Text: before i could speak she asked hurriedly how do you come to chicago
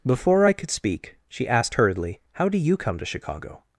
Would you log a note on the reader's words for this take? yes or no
no